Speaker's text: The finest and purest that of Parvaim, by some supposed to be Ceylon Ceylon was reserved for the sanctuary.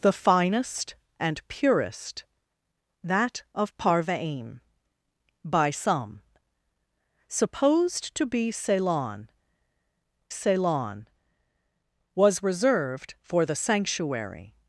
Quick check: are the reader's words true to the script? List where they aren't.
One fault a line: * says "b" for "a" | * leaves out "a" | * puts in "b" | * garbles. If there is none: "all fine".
all fine